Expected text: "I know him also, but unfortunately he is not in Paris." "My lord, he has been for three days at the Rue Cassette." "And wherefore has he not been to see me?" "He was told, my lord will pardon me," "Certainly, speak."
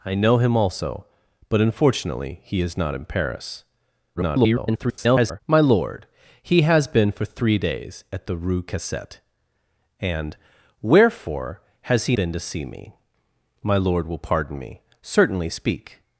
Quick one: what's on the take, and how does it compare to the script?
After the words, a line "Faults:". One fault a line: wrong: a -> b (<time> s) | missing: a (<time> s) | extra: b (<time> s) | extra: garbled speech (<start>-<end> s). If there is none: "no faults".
"I know him also, but unfortunately he is not in Paris." [garbled] "My lord, he has been for three days at the Rue Cassette." "And wherefore has he been to see me?" "My lord will pardon me," "Certainly, speak."
Faults:
extra: garbled speech (4.2-5.4 s)
missing: not (12.2 s)
missing: He was told (12.9 s)